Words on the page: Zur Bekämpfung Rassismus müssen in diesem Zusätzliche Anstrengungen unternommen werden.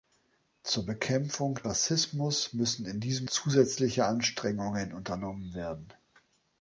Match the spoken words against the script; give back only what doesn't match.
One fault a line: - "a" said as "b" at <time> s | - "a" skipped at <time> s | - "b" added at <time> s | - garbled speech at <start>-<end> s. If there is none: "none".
none